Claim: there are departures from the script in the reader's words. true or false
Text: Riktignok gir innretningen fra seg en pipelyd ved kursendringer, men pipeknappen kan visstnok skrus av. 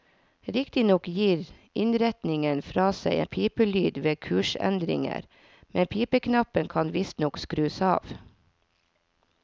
false